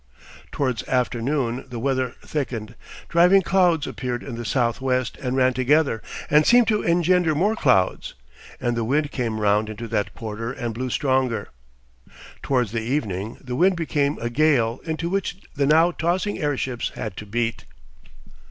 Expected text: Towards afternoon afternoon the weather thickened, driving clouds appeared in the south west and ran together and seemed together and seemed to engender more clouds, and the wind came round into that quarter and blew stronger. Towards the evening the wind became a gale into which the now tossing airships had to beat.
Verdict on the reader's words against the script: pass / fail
fail